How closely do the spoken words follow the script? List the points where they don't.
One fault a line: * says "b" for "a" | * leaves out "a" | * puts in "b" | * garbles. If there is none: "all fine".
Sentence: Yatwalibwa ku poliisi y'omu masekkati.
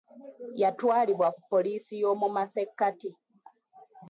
all fine